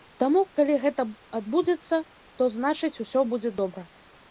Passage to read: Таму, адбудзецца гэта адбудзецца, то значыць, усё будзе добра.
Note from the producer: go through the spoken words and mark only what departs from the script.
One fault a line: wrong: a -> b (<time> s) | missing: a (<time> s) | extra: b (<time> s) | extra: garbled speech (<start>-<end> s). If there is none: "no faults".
wrong: адбудзецца -> калі (0.6 s)